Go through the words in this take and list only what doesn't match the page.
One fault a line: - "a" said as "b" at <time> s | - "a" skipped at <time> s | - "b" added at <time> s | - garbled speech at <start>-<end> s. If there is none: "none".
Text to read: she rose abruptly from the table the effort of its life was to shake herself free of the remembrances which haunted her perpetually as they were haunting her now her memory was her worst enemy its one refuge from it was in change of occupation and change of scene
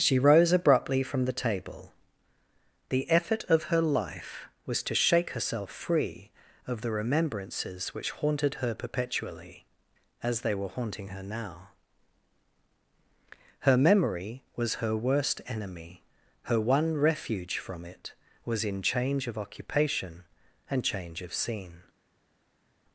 - "its" said as "her" at 3.6 s
- "its" said as "her" at 16.5 s